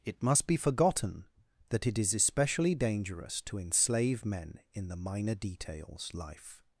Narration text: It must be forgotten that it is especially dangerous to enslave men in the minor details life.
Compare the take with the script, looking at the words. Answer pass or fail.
pass